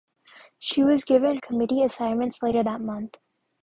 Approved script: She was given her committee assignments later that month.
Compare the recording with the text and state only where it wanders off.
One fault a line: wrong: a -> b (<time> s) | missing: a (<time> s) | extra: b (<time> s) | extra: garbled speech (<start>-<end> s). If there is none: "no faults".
missing: her (1.4 s)